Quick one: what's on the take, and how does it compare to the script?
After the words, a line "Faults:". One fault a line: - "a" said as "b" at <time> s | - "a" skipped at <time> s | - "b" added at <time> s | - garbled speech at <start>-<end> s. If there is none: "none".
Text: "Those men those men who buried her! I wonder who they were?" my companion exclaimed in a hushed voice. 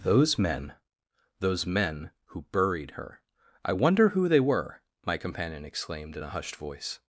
"Those men those men who buried her! I wonder who they were?" my companion exclaimed in a hushed voice.
Faults:
none